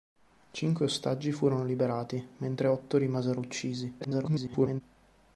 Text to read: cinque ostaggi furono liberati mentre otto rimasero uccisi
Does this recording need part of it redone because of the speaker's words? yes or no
yes